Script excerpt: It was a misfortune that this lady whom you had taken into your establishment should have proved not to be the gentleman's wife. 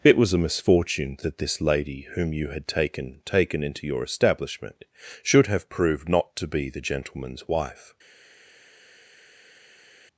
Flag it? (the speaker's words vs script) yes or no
yes